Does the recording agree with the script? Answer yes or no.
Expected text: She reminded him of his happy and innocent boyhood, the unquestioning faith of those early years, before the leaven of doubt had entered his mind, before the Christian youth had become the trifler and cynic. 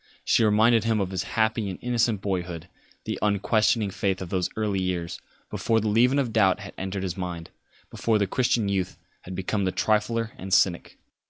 yes